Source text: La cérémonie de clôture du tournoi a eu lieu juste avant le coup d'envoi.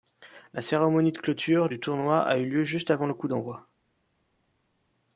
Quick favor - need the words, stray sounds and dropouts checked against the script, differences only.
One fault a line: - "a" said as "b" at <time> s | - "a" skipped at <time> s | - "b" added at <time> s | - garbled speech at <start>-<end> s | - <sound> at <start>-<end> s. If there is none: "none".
none